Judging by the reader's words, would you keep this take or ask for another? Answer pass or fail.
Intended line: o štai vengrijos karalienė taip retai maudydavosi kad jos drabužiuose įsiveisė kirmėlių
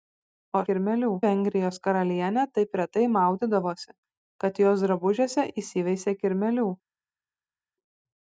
fail